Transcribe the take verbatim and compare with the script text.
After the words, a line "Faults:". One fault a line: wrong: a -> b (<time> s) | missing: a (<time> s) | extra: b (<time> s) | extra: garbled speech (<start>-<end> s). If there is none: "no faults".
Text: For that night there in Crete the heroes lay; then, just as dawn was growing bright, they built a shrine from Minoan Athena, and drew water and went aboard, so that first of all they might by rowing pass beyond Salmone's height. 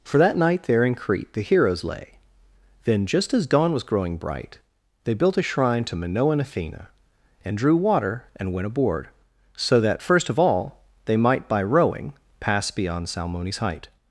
For that night there in Crete the heroes lay; then, just as dawn was growing bright, they built a shrine to Minoan Athena, and drew water and went aboard, so that first of all they might by rowing pass beyond Salmone's height.
Faults:
wrong: from -> to (5.8 s)